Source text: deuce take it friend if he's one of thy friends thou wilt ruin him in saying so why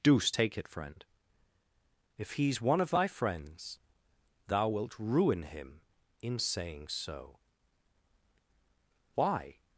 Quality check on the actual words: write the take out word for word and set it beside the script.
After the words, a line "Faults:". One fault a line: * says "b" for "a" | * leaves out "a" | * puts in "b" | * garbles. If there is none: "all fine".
deuce take it friend if he's one of thy friends thou wilt ruin him in saying so why
Faults:
all fine